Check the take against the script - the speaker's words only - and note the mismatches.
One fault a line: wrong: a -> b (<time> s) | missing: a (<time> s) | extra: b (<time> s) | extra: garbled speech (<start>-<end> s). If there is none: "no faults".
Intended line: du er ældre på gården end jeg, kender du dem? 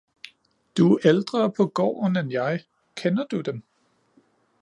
no faults